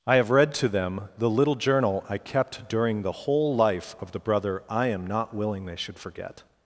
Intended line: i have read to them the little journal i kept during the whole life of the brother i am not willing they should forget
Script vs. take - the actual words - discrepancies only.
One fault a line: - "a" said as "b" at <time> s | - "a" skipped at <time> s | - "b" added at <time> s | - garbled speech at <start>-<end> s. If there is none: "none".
none